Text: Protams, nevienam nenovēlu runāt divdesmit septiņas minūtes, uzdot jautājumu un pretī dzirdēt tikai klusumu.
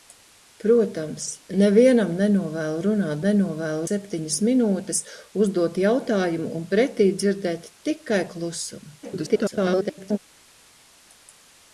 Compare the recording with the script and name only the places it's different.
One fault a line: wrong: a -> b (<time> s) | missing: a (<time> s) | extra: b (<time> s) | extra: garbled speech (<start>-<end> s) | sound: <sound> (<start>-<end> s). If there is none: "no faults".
wrong: divdesmit -> nenovēlu (3.3 s)
extra: garbled speech (9.0-10.2 s)